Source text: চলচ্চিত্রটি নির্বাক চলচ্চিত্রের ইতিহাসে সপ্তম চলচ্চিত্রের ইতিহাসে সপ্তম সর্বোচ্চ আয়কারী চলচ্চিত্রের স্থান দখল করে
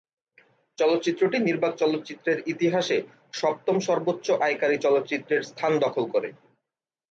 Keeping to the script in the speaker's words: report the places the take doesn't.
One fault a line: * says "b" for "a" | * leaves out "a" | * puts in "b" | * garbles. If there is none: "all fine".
* leaves out "চলচ্চিত্রের ইতিহাসে সপ্তম"